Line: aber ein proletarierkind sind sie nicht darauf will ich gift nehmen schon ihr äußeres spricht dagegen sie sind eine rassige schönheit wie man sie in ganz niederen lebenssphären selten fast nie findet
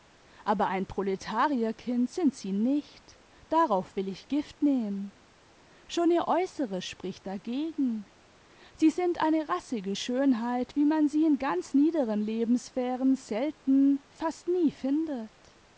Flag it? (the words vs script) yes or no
no